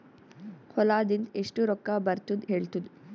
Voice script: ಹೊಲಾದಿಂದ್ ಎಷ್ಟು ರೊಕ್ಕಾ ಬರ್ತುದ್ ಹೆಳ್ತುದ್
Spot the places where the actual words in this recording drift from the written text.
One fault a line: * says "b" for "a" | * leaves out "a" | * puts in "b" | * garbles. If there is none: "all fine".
all fine